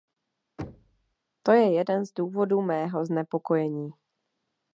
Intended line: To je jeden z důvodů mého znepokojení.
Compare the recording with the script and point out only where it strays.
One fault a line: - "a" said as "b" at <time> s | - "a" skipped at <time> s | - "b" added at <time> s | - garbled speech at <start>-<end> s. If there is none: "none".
none